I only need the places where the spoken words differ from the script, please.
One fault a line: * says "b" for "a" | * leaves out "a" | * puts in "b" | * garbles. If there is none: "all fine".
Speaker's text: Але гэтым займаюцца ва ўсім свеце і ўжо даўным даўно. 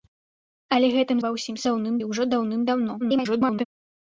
* leaves out "займаюцца"
* says "даўным" for "свеце"
* garbles